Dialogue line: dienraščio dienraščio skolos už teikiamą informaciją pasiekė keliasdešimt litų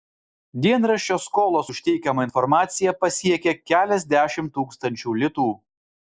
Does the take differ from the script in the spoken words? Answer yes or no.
yes